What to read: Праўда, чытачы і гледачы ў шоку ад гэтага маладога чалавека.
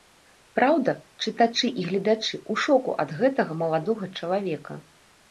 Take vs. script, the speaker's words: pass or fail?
pass